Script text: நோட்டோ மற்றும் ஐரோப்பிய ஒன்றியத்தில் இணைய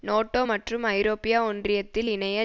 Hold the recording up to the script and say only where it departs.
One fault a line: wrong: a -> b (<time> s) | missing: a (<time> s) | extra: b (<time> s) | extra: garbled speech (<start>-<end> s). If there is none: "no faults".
no faults